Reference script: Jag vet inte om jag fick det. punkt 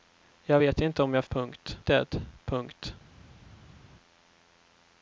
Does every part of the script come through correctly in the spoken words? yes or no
no